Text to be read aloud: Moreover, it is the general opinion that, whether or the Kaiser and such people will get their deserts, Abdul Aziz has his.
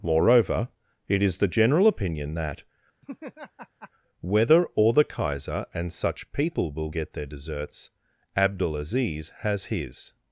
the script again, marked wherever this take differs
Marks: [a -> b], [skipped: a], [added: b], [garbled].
Moreover, it is the general opinion that, whether or the Kaiser and such people will get their deserts, Abdul Aziz has his.